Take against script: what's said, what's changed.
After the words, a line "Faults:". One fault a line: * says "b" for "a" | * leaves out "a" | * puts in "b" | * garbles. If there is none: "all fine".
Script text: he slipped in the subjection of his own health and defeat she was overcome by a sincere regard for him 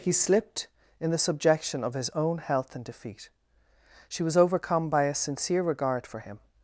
he slipped in the subjection of his own health and defeat she was overcome by a sincere regard for him
Faults:
all fine